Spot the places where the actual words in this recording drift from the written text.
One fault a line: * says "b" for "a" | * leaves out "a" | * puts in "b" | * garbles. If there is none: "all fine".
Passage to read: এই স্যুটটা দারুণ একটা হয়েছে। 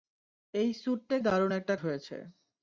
all fine